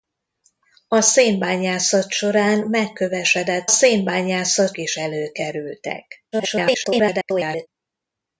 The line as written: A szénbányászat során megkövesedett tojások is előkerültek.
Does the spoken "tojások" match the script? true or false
false